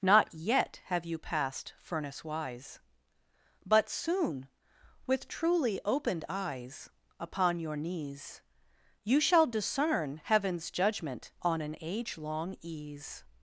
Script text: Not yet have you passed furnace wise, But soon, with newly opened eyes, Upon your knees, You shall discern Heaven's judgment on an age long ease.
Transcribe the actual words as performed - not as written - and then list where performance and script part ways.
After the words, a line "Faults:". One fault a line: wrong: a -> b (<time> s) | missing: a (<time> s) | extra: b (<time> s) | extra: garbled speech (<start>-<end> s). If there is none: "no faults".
Not yet have you passed furnace wise, But soon, with truly opened eyes, Upon your knees, You shall discern Heaven's judgment on an age long ease.
Faults:
wrong: newly -> truly (5.3 s)